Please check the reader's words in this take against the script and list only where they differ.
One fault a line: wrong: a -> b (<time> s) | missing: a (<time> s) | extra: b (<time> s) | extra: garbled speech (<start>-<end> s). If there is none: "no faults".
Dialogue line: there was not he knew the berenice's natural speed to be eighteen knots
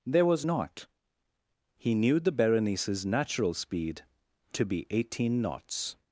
no faults